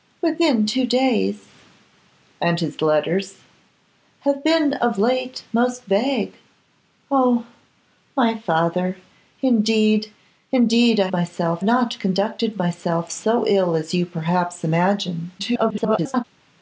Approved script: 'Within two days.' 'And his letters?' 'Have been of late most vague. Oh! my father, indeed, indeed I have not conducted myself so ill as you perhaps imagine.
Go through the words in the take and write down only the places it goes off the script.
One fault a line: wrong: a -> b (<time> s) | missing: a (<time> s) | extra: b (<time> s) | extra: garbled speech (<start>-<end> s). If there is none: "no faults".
wrong: have -> myself (11.1 s)
extra: garbled speech (15.4-16.2 s)